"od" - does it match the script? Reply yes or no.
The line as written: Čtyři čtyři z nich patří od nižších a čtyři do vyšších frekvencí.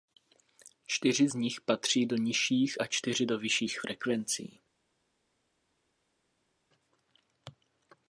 no